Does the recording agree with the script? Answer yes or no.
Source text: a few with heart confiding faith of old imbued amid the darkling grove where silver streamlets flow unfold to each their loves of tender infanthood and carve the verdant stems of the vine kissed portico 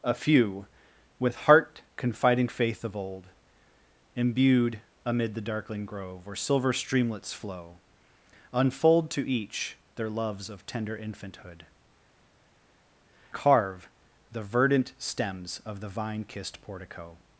no